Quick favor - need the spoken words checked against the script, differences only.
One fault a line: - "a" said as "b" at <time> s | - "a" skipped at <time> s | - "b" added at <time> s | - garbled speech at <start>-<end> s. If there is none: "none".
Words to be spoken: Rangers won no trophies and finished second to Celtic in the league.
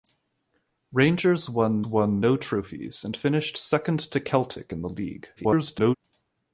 - "won" added at 1.8 s
- garbled speech at 5.4-6.0 s